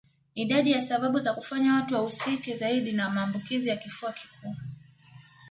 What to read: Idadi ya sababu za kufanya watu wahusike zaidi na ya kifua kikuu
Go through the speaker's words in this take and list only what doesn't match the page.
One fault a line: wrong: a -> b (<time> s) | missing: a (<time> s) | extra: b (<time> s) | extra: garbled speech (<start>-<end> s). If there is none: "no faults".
extra: maambukizi (3.1 s)